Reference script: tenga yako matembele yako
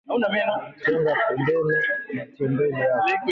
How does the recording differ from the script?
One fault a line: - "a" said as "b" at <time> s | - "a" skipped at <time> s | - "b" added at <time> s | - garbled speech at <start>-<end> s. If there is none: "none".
- "yako" said as "pembeni" at 1.3 s